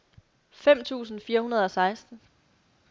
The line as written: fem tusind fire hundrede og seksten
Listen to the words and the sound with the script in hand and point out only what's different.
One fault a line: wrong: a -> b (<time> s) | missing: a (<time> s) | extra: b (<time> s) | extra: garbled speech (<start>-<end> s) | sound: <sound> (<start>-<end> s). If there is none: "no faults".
no faults